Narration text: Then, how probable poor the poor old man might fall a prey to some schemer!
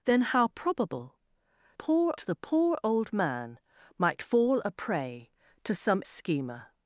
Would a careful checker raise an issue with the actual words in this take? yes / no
no